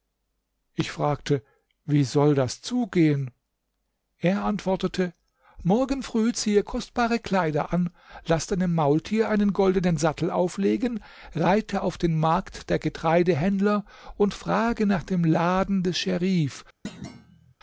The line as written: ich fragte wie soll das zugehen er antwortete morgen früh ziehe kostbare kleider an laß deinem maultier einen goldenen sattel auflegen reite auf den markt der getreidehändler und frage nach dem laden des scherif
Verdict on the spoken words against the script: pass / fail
pass